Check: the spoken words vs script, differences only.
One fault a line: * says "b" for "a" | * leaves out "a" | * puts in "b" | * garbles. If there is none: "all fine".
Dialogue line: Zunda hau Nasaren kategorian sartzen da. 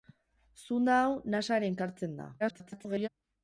* leaves out "kategorian"
* garbles